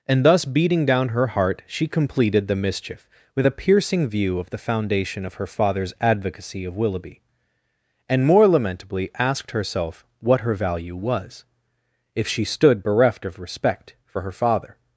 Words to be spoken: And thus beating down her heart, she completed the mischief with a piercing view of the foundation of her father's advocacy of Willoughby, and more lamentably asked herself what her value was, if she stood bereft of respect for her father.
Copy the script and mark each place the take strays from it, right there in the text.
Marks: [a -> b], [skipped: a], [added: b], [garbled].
And thus beating down her heart, she completed the mischief with a piercing view of the foundation of her father's advocacy of Willoughby, and more lamentably asked herself what her value was, if she stood bereft of respect for her father.